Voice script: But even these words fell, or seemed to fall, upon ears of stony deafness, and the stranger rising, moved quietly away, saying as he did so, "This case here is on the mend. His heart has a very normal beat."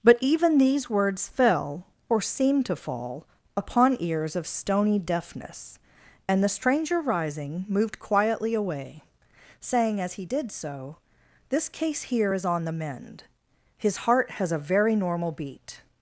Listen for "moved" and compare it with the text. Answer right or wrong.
right